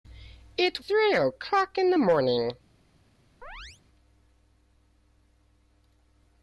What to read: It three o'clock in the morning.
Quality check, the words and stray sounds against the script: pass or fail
fail